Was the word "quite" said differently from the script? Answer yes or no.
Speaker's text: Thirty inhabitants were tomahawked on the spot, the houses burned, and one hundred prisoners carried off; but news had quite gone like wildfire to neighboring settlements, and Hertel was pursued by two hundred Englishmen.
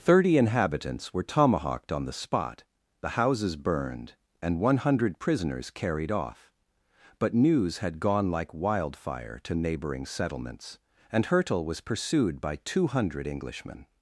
yes